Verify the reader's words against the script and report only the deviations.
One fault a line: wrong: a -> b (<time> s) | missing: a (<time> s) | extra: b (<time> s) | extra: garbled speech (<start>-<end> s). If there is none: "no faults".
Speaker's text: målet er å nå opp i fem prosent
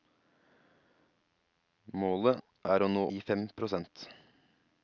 missing: opp (3.0 s)